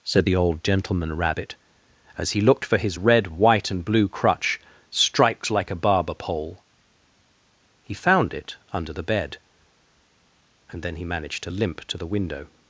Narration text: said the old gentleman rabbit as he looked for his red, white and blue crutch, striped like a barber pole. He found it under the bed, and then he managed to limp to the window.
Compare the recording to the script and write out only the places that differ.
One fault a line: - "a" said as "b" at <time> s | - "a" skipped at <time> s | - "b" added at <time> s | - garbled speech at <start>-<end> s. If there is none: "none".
none